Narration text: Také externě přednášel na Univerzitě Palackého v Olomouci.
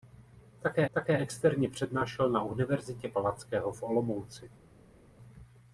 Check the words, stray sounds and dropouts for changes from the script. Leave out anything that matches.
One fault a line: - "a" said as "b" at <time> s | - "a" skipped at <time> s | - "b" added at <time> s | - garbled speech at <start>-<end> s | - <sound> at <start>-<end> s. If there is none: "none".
- "také" added at 0.9 s